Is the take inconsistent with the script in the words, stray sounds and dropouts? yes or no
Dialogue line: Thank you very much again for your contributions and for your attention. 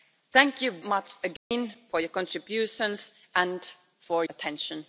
yes